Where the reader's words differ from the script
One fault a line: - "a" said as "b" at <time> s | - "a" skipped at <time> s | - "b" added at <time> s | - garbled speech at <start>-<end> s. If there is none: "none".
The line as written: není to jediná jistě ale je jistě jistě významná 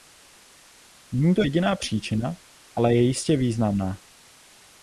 - "jistě" said as "příčina" at 1.8 s
- "jistě" skipped at 3.4 s